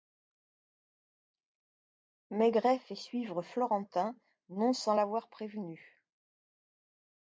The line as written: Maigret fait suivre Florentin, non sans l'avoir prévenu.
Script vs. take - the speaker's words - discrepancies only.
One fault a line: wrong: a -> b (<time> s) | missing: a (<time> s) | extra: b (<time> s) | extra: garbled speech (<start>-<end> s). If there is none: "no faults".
no faults